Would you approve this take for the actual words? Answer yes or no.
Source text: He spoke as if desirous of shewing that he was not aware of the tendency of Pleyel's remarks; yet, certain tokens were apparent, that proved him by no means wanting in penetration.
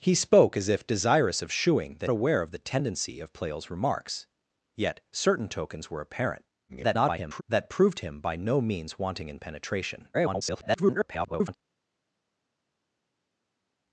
no